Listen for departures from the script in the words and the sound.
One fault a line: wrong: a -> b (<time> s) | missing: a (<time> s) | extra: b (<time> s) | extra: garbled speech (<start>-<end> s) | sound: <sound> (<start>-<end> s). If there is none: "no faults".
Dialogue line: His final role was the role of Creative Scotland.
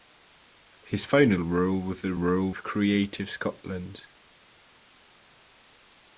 no faults